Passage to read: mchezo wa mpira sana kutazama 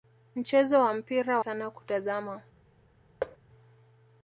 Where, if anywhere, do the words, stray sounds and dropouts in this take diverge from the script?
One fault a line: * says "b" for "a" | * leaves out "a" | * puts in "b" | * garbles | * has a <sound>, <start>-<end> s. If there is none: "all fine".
* has a thud, 3.2-3.4 s